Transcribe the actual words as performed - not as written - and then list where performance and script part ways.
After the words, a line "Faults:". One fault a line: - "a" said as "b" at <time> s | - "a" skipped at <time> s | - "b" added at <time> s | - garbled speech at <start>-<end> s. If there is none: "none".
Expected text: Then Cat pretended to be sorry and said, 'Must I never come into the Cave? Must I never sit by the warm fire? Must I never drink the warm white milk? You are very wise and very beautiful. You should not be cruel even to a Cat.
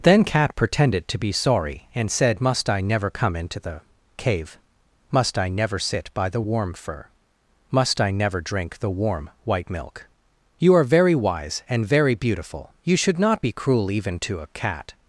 Then Cat pretended to be sorry and said, 'Must I never come into the Cave? Must I never sit by the warm fur? Must I never drink the warm white milk? You are very wise and very beautiful. You should not be cruel even to a Cat.
Faults:
- "fire" said as "fur" at 6.7 s